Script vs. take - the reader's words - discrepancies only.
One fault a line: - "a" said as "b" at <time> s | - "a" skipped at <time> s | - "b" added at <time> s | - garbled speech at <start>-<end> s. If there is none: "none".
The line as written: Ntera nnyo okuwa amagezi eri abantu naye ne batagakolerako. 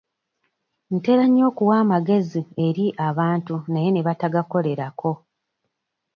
none